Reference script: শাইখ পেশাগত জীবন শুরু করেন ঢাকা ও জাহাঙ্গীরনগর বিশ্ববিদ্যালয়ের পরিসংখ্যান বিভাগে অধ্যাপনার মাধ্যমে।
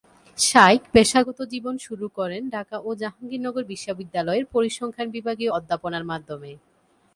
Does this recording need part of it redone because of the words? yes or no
no